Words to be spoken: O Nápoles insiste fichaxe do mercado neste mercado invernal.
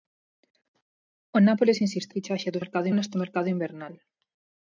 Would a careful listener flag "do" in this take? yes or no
no